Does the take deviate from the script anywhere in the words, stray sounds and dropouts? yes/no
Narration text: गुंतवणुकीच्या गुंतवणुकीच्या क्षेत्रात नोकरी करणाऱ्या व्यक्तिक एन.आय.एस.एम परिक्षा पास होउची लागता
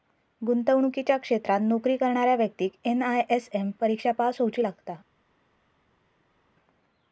yes